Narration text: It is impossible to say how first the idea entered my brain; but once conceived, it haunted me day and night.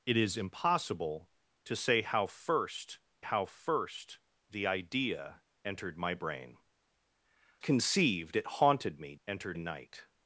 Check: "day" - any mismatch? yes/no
yes